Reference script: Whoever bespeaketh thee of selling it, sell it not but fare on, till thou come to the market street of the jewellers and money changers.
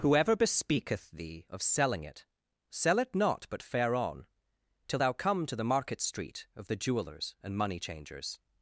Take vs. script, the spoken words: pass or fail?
pass